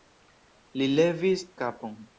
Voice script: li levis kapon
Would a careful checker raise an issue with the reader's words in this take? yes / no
no